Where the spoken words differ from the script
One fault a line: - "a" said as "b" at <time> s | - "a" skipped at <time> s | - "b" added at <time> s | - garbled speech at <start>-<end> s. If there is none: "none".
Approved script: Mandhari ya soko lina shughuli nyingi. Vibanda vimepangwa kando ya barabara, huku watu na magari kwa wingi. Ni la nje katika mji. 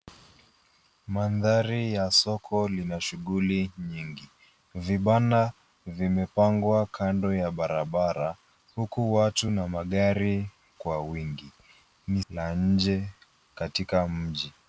none